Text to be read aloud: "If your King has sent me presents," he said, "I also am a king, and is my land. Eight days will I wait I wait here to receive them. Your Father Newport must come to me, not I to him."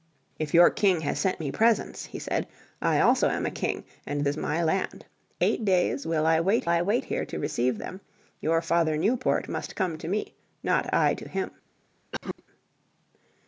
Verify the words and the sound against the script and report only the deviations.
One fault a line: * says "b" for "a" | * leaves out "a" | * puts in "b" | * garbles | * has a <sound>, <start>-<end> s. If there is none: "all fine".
* has a cough, 12.1-12.4 s